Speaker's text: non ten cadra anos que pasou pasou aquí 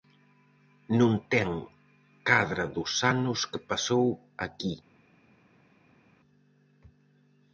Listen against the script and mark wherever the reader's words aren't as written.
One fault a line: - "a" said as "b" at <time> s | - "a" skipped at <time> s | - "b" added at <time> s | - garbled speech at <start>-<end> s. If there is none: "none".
- "dos" added at 2.8 s
- "pasou" skipped at 4.1 s